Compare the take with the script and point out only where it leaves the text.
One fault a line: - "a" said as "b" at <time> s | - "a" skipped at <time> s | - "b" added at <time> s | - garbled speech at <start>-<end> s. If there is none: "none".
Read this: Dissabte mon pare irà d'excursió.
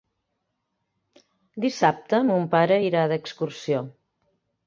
none